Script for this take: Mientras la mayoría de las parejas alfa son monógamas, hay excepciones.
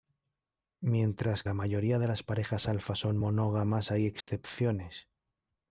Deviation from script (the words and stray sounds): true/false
true